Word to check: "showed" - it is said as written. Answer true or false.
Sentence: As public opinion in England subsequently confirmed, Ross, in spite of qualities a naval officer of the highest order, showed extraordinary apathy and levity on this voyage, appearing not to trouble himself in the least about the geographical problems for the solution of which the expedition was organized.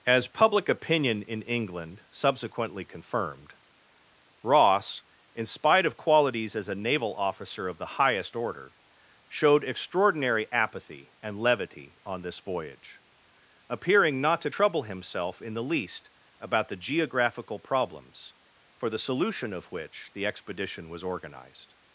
true